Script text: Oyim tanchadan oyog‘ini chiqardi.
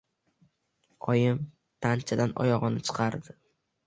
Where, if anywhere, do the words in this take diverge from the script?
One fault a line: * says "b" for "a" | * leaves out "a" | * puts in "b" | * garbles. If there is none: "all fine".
all fine